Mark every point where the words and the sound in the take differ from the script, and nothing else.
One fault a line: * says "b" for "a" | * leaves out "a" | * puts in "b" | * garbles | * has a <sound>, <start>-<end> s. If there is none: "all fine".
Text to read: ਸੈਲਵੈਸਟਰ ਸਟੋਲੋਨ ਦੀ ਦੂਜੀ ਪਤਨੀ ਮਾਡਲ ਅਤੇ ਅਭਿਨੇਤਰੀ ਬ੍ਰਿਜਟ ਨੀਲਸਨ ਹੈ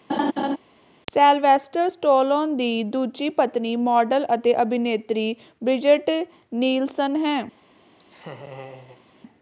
* has a laugh, 0.1-0.6 s
* has a laugh, 8.0-9.0 s